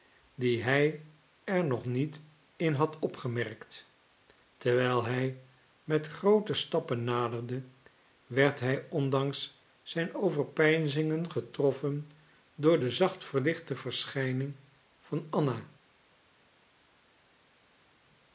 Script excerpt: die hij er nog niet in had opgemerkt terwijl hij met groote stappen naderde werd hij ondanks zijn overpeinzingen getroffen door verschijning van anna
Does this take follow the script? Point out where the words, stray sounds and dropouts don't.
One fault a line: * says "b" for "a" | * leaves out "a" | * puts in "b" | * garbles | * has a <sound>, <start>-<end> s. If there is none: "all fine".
* puts in "de zacht verlichte"